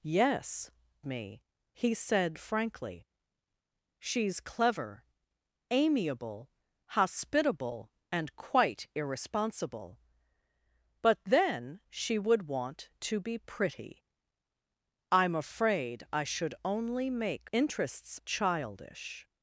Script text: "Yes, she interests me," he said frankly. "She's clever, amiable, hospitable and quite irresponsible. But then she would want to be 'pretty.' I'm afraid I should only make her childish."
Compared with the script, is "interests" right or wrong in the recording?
wrong